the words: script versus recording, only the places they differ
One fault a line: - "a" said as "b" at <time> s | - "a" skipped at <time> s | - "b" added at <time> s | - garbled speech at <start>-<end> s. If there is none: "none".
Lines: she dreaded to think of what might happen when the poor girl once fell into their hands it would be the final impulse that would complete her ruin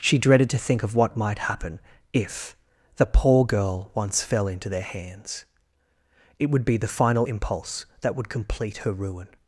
- "when" said as "if" at 2.1 s